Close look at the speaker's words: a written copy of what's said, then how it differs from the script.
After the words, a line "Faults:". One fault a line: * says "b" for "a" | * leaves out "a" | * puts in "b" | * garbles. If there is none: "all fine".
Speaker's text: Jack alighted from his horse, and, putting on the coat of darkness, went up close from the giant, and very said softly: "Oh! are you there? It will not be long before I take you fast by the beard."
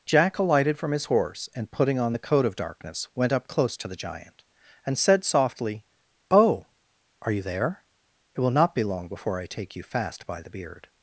Jack alighted from his horse, and, putting on the coat of darkness, went up close to the giant, and said softly: "Oh! are you there? It will not be long before I take you fast by the beard."
Faults:
* says "to" for "from"
* leaves out "very"